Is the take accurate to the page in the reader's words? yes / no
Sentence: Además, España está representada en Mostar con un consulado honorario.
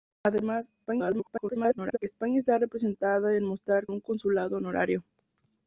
no